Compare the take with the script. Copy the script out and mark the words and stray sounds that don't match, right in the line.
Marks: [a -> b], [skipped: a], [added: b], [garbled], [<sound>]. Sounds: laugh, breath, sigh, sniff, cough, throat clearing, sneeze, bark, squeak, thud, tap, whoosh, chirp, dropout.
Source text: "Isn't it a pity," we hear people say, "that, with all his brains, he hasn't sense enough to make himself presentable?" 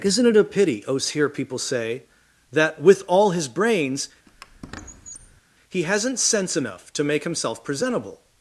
"Isn't it a pity," [we -> os] hear people say, "that, with all his brains, [squeak] he hasn't sense enough to make himself presentable?"